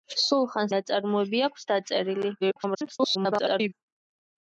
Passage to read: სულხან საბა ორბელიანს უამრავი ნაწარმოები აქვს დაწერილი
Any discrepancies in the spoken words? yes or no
yes